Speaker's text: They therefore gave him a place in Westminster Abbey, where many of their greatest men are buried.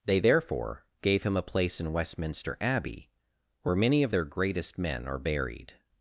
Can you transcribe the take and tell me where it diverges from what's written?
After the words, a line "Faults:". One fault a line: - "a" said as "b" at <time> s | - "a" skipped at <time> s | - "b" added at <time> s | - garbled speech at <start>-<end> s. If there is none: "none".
They therefore gave him a place in Westminster Abbey, where many of their greatest men are buried.
Faults:
none